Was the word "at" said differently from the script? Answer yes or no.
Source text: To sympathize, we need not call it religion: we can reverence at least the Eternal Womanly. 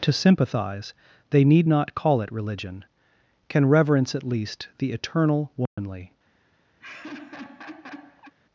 no